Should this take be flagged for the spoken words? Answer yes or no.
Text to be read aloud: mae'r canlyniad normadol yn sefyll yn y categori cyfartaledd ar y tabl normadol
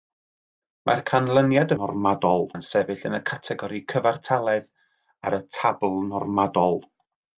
no